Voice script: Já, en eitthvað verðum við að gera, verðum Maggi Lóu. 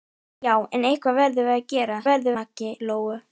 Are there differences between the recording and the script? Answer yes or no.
no